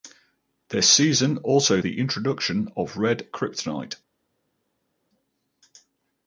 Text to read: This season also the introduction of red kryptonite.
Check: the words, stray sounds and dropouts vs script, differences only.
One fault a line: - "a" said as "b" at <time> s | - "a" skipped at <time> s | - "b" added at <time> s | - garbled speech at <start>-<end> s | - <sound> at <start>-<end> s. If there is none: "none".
none